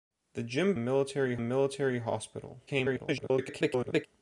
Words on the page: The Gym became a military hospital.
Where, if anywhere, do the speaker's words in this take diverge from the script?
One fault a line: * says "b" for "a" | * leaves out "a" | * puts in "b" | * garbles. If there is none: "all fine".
* says "military" for "became"
* garbles